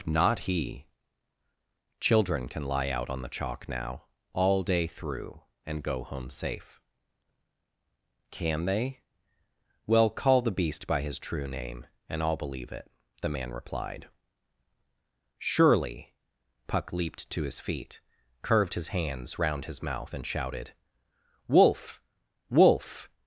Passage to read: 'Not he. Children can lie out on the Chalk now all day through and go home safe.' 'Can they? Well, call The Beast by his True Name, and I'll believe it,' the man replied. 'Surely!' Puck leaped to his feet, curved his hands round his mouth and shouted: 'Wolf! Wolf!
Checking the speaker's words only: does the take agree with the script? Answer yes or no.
yes